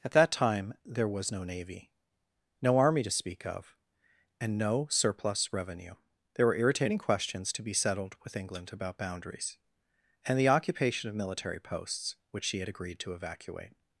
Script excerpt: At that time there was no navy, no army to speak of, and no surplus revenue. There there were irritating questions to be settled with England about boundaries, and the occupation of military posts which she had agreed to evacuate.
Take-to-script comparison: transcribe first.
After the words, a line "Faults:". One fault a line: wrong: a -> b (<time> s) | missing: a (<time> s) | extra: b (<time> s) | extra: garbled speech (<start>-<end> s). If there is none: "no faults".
At that time there was no navy, no army to speak of, and no surplus revenue. There were irritating questions to be settled with England about boundaries, and the occupation of military posts which she had agreed to evacuate.
Faults:
missing: there (6.5 s)